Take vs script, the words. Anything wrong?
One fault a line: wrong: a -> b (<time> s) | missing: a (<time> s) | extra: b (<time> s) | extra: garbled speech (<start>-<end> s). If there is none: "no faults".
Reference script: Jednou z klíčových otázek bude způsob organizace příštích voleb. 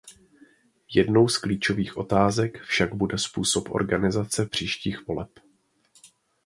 extra: však (2.6 s)